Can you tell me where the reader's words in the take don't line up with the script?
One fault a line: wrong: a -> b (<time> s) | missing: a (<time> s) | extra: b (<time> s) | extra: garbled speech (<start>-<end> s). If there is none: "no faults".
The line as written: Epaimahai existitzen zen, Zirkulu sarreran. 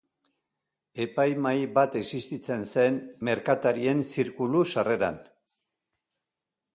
extra: bat (1.8 s)
extra: Merkatarien (3.3 s)